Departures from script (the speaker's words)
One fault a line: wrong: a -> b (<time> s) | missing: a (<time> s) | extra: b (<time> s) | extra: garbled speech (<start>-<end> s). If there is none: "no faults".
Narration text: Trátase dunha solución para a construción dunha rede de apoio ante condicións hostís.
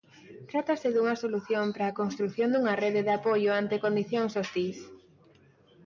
no faults